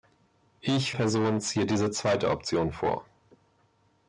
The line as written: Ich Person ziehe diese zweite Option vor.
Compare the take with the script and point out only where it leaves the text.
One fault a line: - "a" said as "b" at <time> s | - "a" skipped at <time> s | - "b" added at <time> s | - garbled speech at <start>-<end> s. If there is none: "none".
none